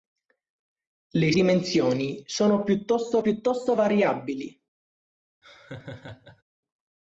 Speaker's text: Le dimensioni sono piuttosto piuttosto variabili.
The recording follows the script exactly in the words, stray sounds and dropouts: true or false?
false